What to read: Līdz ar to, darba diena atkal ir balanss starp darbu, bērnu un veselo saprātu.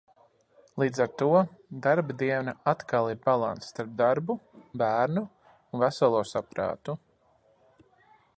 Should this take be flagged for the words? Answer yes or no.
no